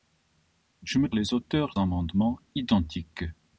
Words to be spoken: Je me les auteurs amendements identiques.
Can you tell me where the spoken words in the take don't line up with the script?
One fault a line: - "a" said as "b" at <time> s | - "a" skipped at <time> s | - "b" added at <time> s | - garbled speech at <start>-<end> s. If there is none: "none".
none